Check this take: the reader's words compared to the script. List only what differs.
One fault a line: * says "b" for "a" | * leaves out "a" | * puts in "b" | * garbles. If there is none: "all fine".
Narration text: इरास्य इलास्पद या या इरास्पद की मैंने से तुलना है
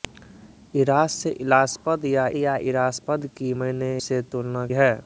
all fine